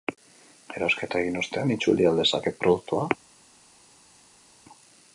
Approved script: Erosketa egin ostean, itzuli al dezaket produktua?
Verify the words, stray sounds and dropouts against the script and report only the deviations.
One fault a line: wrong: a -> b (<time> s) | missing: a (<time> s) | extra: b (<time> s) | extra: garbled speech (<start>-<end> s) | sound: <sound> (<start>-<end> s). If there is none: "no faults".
no faults